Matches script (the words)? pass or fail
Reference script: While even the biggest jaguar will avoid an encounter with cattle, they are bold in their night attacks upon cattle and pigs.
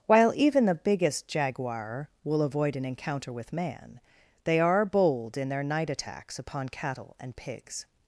fail